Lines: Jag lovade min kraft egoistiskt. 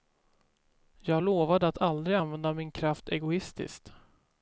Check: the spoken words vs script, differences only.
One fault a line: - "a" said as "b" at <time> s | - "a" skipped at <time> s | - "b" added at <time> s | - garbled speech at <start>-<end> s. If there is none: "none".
- "att aldrig använda" added at 1.7 s